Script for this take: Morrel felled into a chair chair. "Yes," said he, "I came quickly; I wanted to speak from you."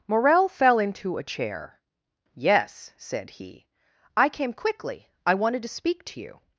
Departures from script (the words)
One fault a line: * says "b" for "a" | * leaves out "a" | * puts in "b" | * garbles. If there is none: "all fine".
* says "fell" for "felled"
* leaves out "chair"
* says "to" for "from"